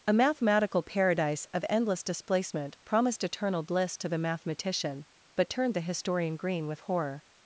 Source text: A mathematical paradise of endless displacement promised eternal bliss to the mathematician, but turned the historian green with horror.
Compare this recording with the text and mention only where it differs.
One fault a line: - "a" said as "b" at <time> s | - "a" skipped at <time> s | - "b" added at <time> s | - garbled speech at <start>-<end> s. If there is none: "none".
none